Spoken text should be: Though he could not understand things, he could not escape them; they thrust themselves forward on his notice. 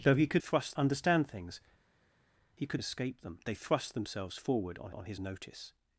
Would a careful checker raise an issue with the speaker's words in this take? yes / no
yes